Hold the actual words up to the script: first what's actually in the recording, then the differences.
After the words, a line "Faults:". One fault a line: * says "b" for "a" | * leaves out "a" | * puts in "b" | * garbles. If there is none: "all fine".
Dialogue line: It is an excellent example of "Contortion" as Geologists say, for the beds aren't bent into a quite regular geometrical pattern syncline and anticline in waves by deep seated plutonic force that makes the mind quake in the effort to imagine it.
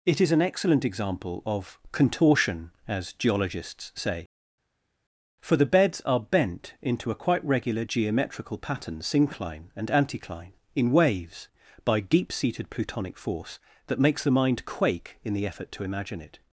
It is an excellent example of "Contortion" as Geologists say, for the beds are bent into a quite regular geometrical pattern syncline and anticline in waves by deep seated plutonic force that makes the mind quake in the effort to imagine it.
Faults:
* says "are" for "aren't"